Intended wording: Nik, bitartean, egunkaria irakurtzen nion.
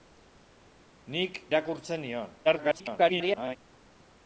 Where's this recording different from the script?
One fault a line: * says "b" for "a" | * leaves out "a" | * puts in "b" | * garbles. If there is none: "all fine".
* leaves out "bitartean egunkaria"
* garbles